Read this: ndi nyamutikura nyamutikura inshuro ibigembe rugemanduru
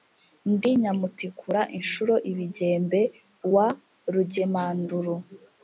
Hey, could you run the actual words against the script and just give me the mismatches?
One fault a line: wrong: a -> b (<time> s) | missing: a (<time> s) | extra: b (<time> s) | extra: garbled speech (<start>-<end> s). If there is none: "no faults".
missing: nyamutikura (1.6 s)
extra: wa (3.5 s)